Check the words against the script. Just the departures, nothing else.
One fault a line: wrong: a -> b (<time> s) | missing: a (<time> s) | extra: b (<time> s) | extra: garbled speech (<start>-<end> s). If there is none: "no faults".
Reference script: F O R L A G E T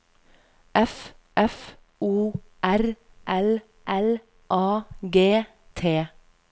extra: f (1.3 s)
extra: L (3.9 s)
missing: E (5.5 s)